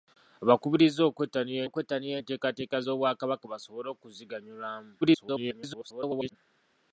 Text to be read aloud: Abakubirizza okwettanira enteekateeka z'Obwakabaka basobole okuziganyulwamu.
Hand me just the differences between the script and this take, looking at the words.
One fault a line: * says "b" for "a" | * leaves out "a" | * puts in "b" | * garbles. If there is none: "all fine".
* puts in "okwettanira"
* garbles